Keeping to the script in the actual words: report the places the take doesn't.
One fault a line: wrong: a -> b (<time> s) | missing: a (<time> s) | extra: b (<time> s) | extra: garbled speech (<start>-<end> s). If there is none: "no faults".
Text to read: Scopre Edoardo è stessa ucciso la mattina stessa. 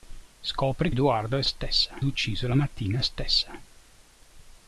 no faults